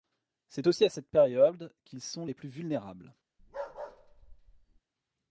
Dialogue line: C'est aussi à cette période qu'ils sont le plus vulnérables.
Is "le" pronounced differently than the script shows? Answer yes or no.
yes